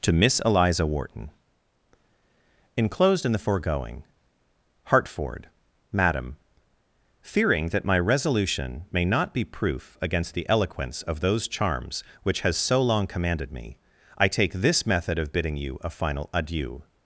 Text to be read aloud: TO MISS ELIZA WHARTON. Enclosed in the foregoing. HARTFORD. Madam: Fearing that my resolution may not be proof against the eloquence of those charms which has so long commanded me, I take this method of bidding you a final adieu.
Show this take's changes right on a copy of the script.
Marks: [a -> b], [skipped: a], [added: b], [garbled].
TO MISS ELIZA WHARTON. Enclosed in the foregoing. HARTFORD. Madam: Fearing that my resolution may not be proof against the eloquence of those charms which has so long commanded me, I take this method of bidding you a final adieu.